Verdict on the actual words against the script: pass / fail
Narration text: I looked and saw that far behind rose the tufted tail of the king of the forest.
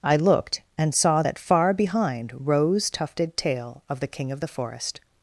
fail